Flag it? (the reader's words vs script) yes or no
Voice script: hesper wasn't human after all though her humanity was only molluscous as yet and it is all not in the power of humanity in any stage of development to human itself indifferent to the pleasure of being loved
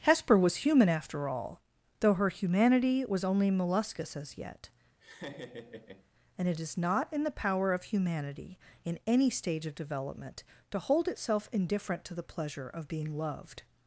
yes